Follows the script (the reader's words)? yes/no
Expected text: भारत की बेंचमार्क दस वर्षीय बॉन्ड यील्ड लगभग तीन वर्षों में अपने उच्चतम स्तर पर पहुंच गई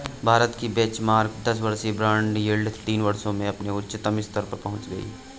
no